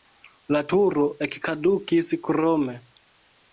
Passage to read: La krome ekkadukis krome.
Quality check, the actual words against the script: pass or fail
fail